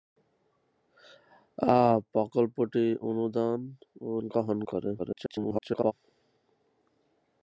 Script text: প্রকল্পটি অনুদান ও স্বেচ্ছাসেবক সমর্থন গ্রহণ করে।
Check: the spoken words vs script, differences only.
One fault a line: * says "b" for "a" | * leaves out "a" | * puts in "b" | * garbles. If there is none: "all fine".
* leaves out "স্বেচ্ছাসেবক সমর্থন"
* garbles